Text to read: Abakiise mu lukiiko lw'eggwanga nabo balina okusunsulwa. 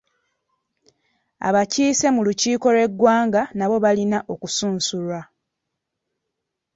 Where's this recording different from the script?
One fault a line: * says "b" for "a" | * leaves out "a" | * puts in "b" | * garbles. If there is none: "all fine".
all fine